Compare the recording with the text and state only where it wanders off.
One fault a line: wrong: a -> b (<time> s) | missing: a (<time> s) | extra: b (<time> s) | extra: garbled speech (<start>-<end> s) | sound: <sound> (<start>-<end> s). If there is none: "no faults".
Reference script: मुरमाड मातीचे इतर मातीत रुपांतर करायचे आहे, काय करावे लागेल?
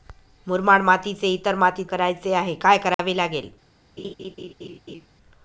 missing: रुपांतर (1.9 s)
sound: dropout (2.9-3.0 s)
sound: laugh (4.0-5.1 s)